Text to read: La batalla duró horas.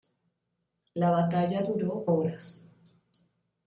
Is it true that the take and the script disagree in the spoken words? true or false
false